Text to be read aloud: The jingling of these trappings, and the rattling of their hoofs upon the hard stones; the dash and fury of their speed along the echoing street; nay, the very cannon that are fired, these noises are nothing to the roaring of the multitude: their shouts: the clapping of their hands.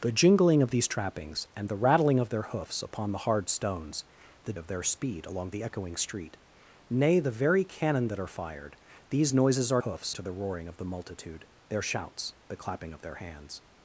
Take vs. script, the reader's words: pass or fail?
fail